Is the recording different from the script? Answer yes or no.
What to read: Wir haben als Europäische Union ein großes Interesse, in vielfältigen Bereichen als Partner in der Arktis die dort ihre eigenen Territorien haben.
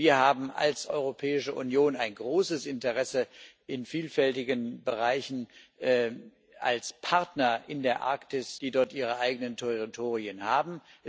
no